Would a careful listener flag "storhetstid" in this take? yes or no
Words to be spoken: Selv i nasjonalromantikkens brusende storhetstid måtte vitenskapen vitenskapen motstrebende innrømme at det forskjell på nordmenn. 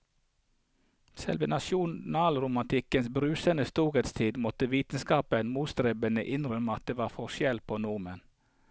no